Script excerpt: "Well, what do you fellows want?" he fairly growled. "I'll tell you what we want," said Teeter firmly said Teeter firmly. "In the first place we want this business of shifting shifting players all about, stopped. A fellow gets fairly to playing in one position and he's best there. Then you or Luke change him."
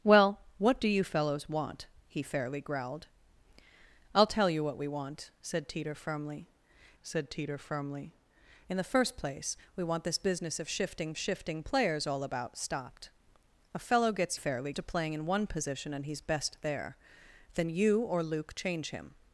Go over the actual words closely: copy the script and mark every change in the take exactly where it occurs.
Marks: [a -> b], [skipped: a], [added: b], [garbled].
"Well, what do you fellows want?" he fairly growled. "I'll tell you what we want," said Teeter firmly said Teeter firmly. "In the first place we want this business of shifting shifting players all about, stopped. A fellow gets fairly to playing in one position and he's best there. Then you or Luke change him."